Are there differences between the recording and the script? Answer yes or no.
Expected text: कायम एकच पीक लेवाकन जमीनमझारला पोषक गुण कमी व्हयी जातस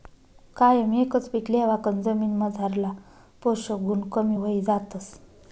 no